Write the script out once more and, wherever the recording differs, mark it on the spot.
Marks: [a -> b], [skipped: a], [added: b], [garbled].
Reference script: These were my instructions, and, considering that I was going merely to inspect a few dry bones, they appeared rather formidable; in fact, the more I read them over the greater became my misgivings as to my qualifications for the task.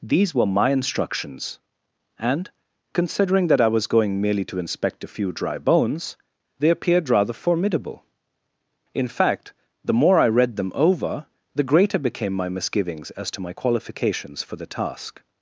These were my instructions, and, considering that I was going merely to inspect a few dry bones, they appeared rather formidable; in fact, the more I read them over the greater became my misgivings as to my qualifications for the task.